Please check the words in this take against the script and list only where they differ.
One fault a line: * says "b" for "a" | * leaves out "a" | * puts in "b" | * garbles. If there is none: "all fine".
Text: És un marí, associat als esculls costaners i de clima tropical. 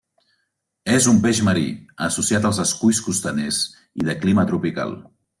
* puts in "peix"